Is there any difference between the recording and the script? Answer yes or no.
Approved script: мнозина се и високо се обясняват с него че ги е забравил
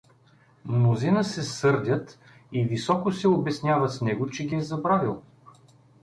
yes